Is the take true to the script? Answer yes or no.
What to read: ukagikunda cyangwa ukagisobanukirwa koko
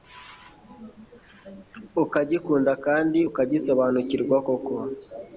no